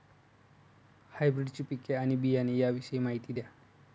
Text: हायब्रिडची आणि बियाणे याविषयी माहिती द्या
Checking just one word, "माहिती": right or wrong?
right